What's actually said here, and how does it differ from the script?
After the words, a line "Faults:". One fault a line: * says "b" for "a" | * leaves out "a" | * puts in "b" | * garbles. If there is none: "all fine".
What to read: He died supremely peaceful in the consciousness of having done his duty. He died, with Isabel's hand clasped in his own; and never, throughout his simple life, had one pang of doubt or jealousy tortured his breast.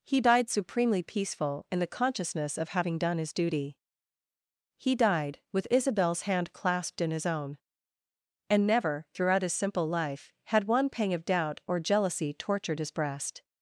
He died supremely peaceful in the consciousness of having done his duty. He died, with Isabel's hand clasped in his own; and never, throughout his simple life, had one pang of doubt or jealousy tortured his breast.
Faults:
all fine